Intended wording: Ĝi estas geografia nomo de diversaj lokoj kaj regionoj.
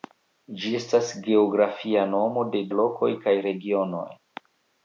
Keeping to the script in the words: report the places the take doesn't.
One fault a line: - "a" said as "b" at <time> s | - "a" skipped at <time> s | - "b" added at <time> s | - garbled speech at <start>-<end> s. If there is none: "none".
- "diversaj" skipped at 2.6 s